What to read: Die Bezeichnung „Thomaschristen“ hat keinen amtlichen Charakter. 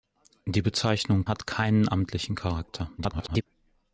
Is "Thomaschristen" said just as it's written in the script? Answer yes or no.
no